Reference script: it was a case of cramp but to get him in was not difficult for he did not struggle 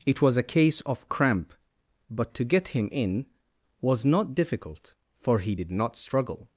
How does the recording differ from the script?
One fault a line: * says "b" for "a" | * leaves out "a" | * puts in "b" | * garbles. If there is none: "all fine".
all fine